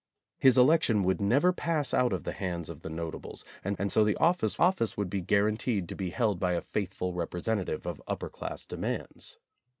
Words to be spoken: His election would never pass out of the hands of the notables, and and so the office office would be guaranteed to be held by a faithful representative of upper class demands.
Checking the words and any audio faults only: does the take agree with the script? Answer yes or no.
yes